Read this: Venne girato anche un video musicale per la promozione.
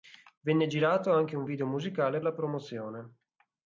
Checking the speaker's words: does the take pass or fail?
fail